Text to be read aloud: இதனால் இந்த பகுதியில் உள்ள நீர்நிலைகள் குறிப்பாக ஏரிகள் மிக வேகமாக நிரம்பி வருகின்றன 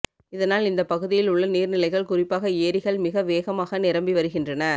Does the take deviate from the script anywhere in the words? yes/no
no